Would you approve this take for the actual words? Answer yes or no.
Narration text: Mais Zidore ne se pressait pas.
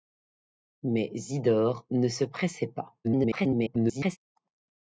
no